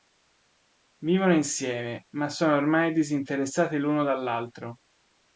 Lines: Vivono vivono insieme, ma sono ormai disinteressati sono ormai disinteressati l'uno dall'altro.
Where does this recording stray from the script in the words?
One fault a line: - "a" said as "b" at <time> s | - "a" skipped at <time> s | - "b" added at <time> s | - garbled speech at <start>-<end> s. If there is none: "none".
- "vivono" skipped at 1.4 s
- "sono ormai disinteressati" skipped at 3.8 s